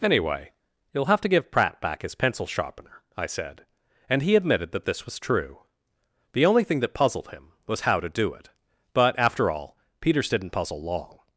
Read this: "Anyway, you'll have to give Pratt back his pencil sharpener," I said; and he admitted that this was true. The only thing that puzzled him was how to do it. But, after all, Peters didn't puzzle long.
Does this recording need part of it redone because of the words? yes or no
no